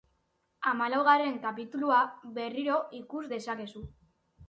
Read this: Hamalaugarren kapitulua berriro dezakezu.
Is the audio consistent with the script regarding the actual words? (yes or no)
no